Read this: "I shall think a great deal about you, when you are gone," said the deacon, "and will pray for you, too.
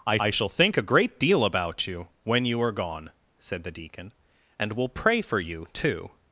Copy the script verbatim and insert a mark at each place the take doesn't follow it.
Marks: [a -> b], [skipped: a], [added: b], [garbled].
"I [added: I] shall think a great deal about you, when you are gone," said the deacon, "and will pray for you, too.